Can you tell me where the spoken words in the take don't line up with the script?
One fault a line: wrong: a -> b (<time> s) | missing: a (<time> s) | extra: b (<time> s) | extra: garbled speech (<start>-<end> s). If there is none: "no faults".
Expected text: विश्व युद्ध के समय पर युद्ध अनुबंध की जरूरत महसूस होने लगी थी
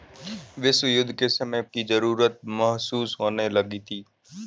missing: पर युद्ध अनुबंध (1.6 s)